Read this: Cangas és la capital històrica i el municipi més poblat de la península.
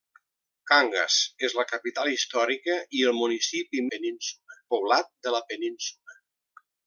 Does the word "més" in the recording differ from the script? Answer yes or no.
yes